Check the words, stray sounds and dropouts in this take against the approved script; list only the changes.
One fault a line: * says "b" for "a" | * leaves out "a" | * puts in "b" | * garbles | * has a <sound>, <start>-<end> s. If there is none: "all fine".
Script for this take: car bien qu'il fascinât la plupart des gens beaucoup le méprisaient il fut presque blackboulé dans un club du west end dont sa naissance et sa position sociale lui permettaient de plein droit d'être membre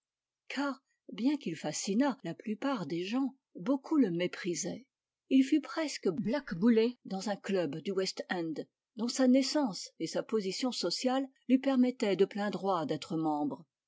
all fine